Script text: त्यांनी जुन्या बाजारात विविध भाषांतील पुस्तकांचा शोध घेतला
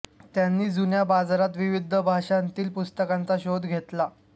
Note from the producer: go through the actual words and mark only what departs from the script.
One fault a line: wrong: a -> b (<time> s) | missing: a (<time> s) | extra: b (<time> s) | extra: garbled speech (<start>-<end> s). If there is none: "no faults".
no faults